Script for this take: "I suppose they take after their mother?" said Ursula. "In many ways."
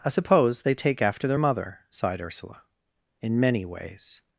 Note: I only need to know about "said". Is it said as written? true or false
false